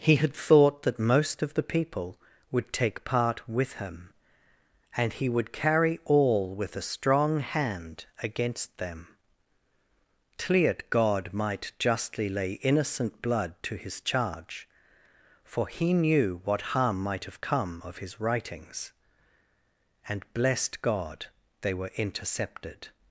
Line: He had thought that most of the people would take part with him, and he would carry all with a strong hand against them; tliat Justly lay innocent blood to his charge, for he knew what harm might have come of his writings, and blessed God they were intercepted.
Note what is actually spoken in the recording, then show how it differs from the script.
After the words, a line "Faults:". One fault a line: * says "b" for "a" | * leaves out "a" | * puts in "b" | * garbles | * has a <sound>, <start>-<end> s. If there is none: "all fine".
He had thought that most of the people would take part with him, and he would carry all with a strong hand against them; tliat God might justly lay innocent blood to his charge, for he knew what harm might have come of his writings, and blessed God they were intercepted.
Faults:
* puts in "God might"